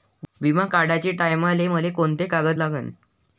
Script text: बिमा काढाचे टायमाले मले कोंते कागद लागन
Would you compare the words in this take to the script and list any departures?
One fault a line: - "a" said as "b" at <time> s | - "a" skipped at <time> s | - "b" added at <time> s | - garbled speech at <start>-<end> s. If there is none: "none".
none